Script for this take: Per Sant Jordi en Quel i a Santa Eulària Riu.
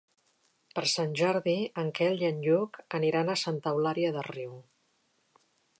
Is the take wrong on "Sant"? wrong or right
right